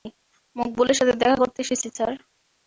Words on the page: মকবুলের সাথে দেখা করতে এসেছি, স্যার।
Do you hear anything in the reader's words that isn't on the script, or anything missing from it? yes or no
no